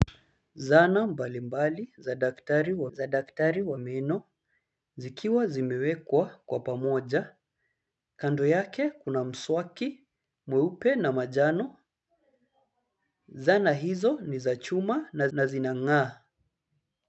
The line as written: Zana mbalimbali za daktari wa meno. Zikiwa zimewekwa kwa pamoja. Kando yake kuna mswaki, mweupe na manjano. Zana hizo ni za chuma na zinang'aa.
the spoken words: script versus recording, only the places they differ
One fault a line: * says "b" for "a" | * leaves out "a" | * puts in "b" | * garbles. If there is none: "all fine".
* puts in "za daktari wa"
* puts in "na"